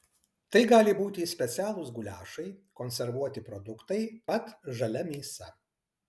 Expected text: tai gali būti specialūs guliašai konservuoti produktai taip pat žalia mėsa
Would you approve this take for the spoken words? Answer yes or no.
no